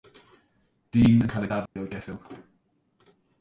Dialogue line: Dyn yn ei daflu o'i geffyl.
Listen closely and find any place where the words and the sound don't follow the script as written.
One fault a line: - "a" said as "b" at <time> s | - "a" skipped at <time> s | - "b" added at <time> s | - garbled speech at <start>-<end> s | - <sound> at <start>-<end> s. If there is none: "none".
- "cael" added at 1.3 s
- dropout at 1.7-1.8 s